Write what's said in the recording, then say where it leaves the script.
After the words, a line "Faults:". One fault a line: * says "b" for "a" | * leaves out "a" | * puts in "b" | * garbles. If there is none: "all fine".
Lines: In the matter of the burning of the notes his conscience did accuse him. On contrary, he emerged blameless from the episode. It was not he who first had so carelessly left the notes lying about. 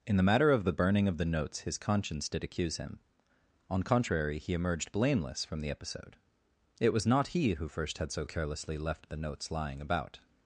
In the matter of the burning of the notes his conscience did accuse him. On contrary, he emerged blameless from the episode. It was not he who first had so carelessly left the notes lying about.
Faults:
all fine